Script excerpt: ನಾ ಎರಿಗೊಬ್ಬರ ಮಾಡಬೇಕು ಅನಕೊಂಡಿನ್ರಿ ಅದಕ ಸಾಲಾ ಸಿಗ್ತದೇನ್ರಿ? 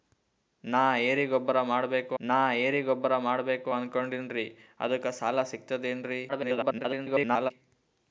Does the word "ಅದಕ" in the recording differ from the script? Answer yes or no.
no